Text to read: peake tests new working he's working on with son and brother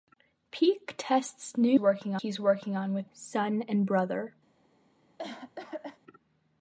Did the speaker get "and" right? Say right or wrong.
right